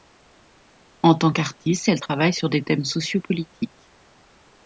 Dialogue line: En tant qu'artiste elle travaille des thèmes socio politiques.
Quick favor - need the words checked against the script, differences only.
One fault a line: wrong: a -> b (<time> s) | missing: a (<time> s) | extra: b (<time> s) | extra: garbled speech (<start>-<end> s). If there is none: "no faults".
extra: sur (2.3 s)